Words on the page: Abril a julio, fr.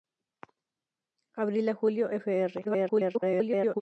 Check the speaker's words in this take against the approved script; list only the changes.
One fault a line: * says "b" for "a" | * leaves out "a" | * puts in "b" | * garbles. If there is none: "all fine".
* garbles